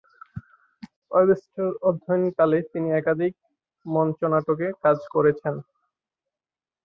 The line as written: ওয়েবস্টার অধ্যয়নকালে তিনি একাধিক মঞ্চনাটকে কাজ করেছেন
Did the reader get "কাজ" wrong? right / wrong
right